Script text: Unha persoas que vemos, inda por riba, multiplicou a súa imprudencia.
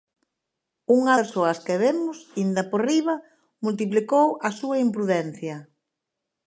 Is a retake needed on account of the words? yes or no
no